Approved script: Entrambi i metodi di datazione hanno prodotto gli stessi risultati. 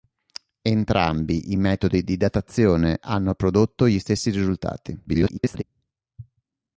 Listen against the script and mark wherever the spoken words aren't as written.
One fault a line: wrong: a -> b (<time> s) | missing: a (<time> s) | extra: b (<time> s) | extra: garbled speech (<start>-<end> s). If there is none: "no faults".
extra: garbled speech (5.1-5.6 s)